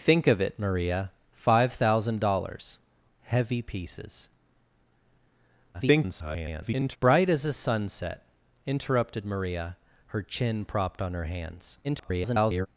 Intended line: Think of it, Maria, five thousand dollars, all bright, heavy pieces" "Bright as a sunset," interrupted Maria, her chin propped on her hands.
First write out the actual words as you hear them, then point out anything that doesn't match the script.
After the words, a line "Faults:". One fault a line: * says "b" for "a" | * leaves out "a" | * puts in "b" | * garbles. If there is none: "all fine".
Think of it, Maria, five thousand dollars, heavy pieces" [garbled] "Bright as a sunset," interrupted Maria, her chin propped on her hands. [garbled]
Faults:
* leaves out "all bright"
* garbles
* garbles